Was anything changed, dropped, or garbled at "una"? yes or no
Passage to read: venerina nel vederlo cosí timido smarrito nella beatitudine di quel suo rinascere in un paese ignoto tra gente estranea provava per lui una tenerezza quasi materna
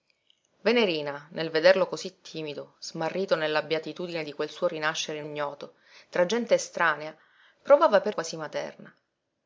yes